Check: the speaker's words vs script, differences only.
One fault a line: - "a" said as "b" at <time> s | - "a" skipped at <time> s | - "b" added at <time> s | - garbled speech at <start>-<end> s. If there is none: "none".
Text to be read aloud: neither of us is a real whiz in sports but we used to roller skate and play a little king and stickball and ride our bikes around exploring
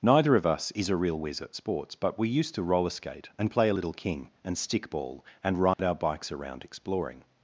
- "in" said as "at" at 1.4 s